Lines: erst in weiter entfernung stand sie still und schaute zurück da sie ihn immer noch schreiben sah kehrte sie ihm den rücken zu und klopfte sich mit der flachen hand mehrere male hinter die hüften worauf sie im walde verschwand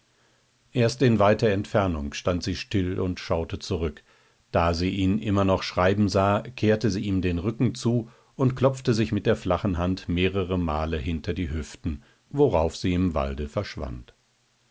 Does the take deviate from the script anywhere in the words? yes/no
no